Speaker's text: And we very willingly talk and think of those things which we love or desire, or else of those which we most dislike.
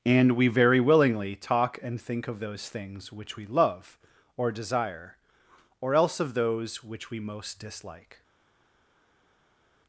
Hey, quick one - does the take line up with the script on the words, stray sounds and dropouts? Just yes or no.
yes